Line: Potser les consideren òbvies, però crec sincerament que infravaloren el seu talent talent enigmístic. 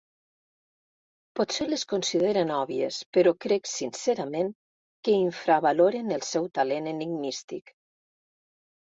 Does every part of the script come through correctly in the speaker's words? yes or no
no